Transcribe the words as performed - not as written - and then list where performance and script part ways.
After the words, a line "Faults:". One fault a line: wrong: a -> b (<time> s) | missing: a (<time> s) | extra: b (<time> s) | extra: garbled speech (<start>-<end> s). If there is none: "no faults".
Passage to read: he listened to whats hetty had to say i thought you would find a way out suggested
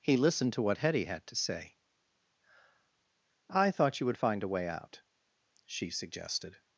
he listened to what hetty had to say i thought you would find a way out she suggested
Faults:
wrong: whats -> what (0.6 s)
extra: she (5.6 s)